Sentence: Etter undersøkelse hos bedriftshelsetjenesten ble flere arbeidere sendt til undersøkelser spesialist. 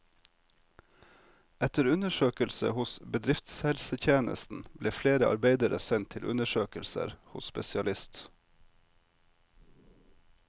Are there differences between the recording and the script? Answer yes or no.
yes